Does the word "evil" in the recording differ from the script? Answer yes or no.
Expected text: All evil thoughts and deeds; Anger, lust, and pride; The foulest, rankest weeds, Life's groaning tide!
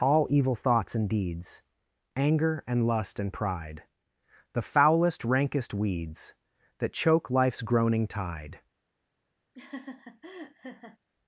no